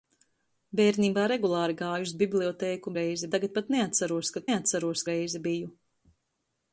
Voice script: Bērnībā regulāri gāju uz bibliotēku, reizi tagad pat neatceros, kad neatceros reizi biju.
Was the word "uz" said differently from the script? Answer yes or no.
no